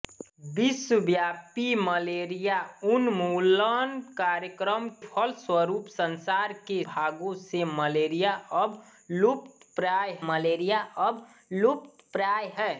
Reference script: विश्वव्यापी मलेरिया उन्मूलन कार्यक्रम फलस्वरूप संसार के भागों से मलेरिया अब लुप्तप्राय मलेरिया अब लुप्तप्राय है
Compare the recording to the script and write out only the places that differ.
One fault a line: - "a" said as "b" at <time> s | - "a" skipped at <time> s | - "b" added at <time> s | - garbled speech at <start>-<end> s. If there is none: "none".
none